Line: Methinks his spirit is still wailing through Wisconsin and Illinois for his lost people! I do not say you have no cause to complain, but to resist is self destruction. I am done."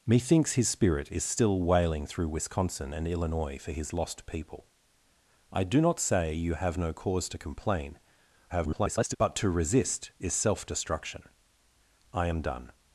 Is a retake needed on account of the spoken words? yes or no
yes